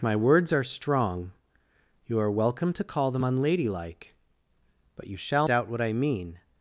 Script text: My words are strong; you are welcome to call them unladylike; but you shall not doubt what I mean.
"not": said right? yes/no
no